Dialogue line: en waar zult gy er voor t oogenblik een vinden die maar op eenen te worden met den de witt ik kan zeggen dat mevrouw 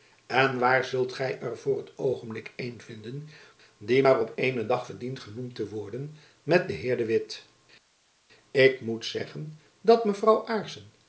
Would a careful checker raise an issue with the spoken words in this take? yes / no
yes